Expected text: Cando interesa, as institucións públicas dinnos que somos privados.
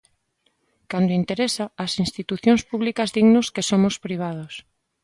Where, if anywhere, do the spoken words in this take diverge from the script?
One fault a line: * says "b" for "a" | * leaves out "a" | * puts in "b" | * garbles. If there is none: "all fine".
all fine